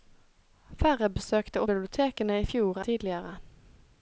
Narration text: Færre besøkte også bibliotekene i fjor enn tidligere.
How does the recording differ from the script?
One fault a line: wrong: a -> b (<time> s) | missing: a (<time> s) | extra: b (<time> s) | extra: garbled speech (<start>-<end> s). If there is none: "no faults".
missing: også (1.6 s)
missing: enn (2.8 s)